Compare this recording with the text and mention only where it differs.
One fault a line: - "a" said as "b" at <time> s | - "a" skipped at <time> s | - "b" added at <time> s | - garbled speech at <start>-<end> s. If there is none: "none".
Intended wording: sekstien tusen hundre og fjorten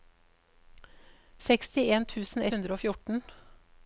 none